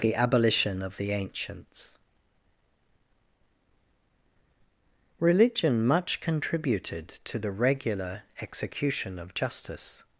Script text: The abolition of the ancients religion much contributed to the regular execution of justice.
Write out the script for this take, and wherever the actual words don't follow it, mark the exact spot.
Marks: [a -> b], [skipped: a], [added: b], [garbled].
The abolition of the ancients religion much contributed to the regular execution of justice.